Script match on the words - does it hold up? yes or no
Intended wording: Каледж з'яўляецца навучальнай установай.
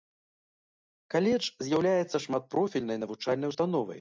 no